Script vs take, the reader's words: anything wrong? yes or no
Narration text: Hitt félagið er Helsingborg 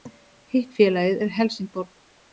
no